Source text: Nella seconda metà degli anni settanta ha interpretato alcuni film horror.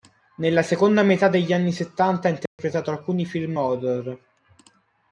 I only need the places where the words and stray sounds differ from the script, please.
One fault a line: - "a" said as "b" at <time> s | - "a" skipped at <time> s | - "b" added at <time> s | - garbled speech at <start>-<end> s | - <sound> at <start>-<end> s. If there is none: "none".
- dropout at 2.5-2.6 s